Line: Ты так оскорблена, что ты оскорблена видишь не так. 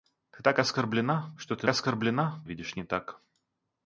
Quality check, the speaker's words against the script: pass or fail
pass